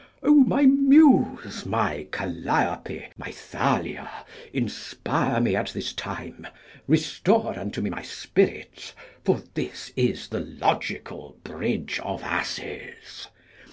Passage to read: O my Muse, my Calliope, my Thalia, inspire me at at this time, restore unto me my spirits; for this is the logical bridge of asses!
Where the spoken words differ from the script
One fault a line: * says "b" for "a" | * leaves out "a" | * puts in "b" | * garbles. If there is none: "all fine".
* leaves out "at"